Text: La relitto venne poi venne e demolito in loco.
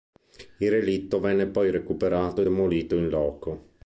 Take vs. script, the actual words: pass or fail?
fail